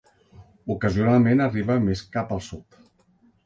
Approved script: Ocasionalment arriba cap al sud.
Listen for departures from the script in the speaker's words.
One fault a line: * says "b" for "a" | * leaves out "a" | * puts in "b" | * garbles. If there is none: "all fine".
* puts in "més"